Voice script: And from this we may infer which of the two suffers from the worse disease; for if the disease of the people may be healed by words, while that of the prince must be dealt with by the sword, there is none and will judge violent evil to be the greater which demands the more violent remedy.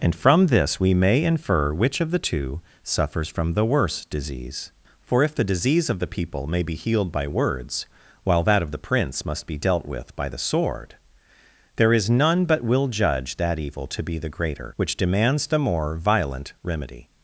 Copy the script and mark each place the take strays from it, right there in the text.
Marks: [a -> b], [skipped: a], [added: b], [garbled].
And from this we may infer which of the two suffers from the worse disease; for if the disease of the people may be healed by words, while that of the prince must be dealt with by the sword, there is none [and -> but] will judge [violent -> that] evil to be the greater which demands the more violent remedy.